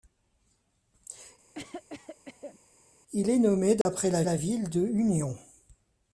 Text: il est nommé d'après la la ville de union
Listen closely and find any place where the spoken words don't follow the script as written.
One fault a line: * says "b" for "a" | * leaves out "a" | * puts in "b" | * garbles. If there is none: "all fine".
all fine